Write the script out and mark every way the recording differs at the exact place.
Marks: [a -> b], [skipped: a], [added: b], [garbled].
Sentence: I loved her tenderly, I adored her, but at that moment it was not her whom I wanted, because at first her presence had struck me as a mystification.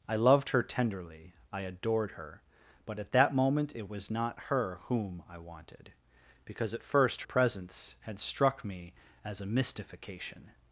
I loved her tenderly, I adored her, but at that moment it was not her whom I wanted, because at first [skipped: her] presence had struck me as a mystification.